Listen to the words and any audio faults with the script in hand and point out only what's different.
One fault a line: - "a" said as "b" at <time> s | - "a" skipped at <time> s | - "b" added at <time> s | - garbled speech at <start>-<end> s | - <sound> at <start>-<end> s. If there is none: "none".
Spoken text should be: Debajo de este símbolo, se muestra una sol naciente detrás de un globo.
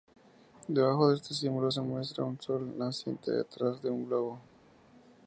- "una" said as "un" at 2.2 s